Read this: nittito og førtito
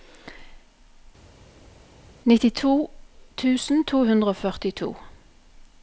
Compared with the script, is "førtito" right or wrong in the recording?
right